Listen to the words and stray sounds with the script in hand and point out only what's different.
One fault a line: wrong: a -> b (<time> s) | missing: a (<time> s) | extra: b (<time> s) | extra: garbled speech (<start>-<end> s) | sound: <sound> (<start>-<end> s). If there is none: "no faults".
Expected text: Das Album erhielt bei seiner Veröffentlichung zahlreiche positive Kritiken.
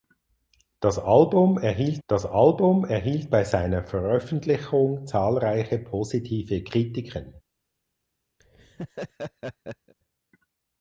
extra: das Album erhielt (2.1 s)
sound: laugh (8.4-9.9 s)